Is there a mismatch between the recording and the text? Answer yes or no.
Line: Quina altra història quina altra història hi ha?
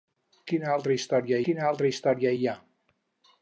no